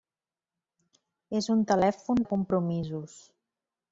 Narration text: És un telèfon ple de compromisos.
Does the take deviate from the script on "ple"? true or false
true